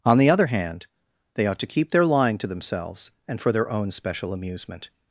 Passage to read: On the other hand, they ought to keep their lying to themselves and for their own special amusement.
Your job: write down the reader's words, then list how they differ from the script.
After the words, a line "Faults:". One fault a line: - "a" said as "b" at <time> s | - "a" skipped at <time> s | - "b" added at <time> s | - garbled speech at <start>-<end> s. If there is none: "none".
On the other hand, they ought to keep their lying to themselves and for their own special amusement.
Faults:
none